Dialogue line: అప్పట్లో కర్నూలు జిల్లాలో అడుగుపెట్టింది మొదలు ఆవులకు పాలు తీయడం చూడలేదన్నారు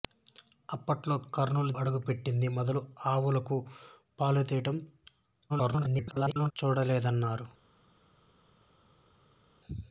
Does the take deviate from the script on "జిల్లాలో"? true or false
true